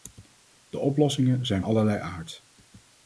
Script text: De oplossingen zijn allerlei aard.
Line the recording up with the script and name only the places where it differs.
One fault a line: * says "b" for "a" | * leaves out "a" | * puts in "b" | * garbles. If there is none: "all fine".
all fine